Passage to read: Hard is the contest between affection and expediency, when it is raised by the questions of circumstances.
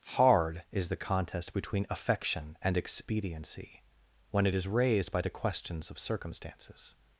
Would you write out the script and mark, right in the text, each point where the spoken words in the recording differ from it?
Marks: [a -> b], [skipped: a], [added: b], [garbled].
Hard is the contest between affection and expediency, when it is raised by the questions of circumstances.